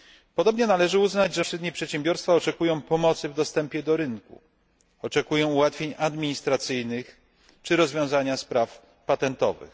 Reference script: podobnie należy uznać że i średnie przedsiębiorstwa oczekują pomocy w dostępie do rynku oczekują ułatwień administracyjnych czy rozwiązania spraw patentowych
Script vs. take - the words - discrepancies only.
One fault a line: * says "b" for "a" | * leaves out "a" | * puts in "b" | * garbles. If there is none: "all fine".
all fine